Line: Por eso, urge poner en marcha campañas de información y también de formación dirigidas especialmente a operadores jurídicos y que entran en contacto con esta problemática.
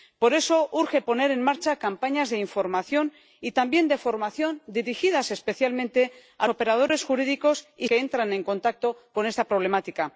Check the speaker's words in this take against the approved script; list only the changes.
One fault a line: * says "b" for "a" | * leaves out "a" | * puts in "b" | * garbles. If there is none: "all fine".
all fine